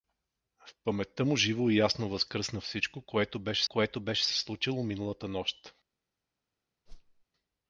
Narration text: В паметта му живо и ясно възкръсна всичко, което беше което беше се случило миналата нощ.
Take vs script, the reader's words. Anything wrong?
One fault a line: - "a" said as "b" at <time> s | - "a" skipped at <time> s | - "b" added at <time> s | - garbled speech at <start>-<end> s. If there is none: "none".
none